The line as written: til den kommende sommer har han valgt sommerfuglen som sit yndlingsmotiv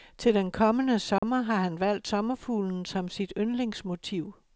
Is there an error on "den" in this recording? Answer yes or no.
no